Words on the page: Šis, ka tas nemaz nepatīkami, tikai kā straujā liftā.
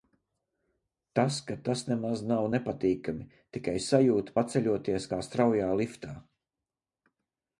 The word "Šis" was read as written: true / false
false